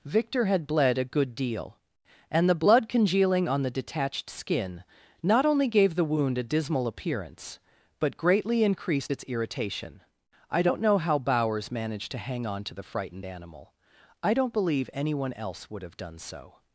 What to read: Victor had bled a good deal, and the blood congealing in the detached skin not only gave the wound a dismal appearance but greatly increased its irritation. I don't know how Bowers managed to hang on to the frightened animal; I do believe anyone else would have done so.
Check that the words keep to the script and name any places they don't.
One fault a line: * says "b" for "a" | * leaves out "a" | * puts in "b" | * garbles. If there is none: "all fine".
* says "on" for "in"
* says "don't" for "do"